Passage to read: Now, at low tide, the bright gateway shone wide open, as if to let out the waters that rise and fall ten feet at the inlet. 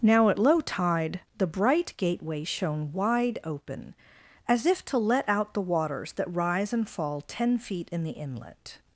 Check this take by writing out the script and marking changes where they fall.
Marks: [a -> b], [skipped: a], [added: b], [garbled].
Now, at low tide, the bright gateway shone wide open, as if to let out the waters that rise and fall ten feet [at -> in] the inlet.